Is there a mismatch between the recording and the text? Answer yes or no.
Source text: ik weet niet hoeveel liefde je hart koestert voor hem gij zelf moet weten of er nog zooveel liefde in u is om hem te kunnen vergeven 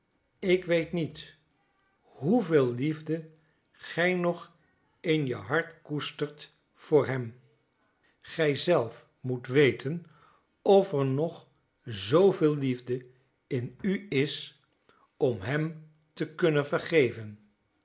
yes